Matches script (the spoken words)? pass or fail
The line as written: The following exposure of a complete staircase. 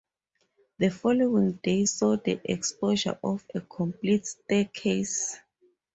fail